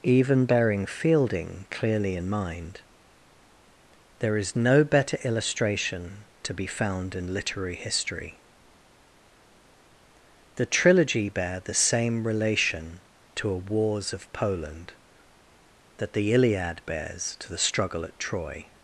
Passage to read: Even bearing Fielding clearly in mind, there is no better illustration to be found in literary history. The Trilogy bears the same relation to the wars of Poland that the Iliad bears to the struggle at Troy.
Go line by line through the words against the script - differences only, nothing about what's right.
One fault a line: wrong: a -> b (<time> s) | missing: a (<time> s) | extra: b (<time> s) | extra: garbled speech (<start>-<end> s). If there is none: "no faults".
wrong: bears -> bear (11.3 s)
wrong: the -> a (13.5 s)